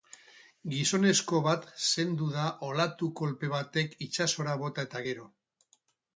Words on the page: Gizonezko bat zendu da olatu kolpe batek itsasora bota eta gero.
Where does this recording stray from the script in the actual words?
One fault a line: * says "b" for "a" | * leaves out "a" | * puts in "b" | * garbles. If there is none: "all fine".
all fine